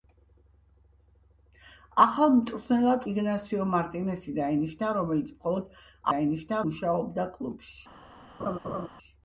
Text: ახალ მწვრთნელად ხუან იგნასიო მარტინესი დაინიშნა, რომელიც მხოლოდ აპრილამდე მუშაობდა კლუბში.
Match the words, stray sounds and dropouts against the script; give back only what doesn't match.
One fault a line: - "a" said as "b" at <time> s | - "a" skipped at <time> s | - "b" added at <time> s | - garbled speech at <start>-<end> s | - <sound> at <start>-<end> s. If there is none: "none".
- "ხუან" skipped at 3.0 s
- "აპრილამდე" said as "დაინიშნა" at 6.1 s
- laugh at 8.4-8.9 s